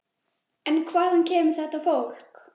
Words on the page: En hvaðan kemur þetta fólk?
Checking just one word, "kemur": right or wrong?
right